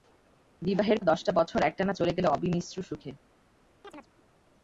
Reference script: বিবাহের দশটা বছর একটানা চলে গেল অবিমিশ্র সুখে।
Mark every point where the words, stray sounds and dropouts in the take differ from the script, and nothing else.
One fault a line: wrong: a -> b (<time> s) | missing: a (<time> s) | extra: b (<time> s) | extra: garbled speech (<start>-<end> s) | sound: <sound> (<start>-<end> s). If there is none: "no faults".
sound: chirp (3.8-4.1 s)